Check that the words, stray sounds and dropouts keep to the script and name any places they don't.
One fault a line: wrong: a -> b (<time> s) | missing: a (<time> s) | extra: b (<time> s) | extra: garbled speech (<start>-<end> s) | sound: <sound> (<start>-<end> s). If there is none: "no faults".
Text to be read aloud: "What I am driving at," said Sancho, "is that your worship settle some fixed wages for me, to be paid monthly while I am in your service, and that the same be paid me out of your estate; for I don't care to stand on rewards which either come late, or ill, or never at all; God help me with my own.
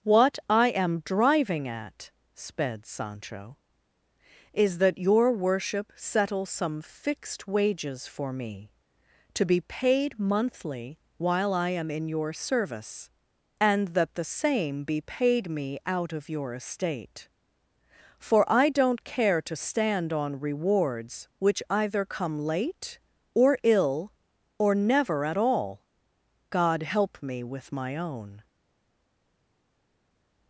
wrong: said -> sped (2.3 s)